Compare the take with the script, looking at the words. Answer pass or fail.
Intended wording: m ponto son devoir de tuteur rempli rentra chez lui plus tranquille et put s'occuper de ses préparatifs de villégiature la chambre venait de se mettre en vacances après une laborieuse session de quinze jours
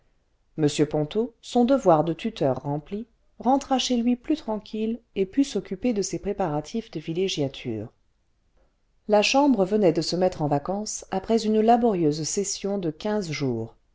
pass